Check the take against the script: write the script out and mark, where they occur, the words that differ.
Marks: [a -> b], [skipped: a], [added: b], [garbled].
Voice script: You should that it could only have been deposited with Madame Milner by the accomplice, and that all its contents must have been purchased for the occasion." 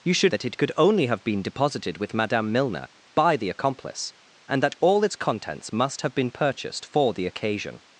You should that it could only have been deposited with Madame Milner by the accomplice, and that all its contents must have been purchased for the occasion."